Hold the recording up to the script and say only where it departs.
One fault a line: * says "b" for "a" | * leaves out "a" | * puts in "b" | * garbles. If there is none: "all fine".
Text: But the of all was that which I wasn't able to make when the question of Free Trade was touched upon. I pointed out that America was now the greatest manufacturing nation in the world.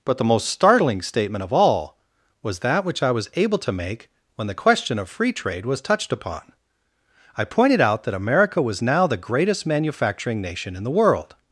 * puts in "most startling statement"
* says "was" for "wasn't"